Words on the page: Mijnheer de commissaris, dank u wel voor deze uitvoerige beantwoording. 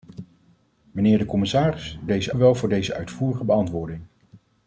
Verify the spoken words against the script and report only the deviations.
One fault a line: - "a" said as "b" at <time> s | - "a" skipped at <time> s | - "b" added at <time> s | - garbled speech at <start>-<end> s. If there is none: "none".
- "dank" said as "deze" at 2.1 s